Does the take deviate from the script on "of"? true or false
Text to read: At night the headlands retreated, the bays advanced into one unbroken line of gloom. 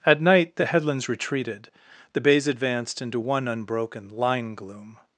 true